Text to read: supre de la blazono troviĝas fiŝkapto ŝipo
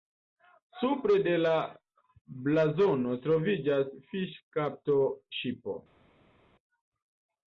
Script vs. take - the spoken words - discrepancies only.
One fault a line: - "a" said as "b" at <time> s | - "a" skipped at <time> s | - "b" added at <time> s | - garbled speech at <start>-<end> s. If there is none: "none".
none